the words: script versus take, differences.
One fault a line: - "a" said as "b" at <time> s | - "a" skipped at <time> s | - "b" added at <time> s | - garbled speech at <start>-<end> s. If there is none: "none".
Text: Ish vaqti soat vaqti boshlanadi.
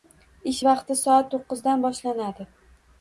- "vaqti" said as "to'qqizdan" at 1.3 s